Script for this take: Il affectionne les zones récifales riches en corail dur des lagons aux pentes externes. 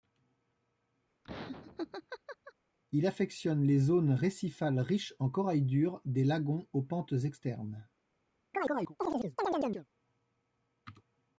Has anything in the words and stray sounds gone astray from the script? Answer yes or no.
yes